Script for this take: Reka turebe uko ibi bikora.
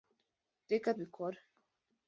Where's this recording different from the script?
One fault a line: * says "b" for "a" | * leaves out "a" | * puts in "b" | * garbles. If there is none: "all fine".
* leaves out "turebe uko ibi"